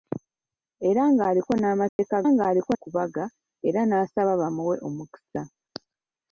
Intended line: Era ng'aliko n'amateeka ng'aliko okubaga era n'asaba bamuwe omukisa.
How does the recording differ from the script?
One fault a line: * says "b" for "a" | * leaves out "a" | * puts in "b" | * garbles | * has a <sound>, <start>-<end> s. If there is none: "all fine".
* has a dropout, 1.9-2.0 s